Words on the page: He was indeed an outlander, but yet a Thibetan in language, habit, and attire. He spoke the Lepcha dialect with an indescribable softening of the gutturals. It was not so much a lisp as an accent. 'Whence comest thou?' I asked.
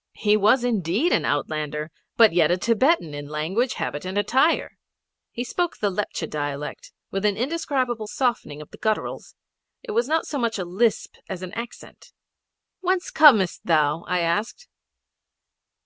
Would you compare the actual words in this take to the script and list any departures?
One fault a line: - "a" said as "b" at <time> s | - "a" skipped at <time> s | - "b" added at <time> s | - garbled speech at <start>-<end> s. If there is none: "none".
none